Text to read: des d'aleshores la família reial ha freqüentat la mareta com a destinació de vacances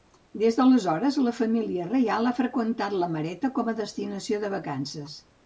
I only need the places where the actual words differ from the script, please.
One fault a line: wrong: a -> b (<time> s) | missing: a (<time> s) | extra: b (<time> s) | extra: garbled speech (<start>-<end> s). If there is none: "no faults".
no faults